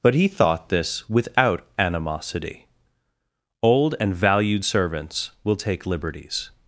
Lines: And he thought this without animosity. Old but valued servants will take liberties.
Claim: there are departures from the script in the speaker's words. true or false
true